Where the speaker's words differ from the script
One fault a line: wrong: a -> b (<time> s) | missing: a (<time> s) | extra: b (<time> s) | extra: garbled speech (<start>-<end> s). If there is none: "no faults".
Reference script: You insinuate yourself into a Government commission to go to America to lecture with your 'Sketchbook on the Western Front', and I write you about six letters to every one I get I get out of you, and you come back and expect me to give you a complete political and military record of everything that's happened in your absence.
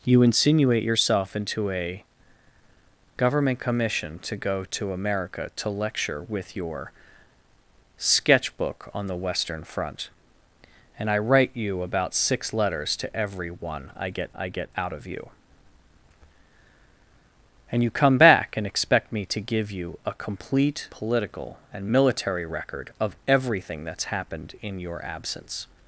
no faults